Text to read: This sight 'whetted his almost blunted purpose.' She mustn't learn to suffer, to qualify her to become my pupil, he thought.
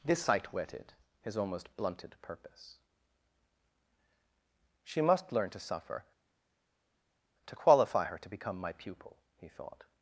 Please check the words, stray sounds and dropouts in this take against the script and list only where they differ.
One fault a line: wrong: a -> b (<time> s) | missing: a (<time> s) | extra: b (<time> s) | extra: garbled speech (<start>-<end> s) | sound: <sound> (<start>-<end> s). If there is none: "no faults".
wrong: mustn't -> must (5.0 s)